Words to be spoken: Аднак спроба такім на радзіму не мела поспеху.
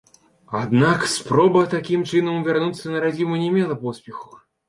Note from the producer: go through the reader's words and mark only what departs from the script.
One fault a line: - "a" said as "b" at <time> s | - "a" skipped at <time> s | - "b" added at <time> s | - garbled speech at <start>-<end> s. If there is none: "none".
- "чынам вярнуцца" added at 2.1 s